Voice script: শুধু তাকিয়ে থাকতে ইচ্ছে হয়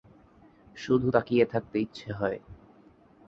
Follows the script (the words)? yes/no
yes